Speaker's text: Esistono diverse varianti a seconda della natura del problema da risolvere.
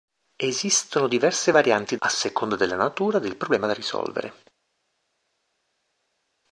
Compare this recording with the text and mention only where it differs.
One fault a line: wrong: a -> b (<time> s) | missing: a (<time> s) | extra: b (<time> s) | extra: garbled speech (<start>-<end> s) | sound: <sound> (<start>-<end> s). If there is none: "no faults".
no faults